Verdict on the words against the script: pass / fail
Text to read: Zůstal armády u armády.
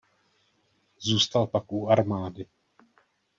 fail